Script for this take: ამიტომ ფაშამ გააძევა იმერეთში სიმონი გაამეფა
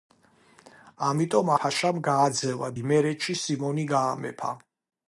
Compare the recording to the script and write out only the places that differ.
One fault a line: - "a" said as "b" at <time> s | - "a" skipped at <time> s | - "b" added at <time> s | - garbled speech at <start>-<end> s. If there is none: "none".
none